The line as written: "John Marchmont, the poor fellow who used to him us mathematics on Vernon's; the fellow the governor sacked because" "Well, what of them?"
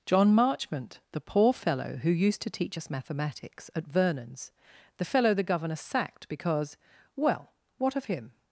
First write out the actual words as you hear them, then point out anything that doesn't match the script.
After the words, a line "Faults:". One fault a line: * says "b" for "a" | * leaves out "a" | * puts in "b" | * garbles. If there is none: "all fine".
"John Marchmont, the poor fellow who used to teach us mathematics at Vernon's; the fellow the governor sacked because" "Well, what of him?"
Faults:
* says "teach" for "him"
* says "at" for "on"
* says "him" for "them"